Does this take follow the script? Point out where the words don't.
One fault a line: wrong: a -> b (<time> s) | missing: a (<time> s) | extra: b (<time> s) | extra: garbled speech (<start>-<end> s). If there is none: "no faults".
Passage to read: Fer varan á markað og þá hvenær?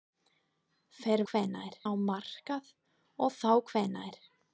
wrong: varan -> hvenær (1.3 s)